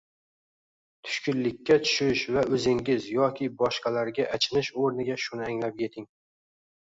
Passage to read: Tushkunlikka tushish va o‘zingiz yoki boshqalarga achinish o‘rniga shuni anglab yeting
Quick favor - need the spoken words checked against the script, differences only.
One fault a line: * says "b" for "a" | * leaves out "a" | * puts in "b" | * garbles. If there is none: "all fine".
all fine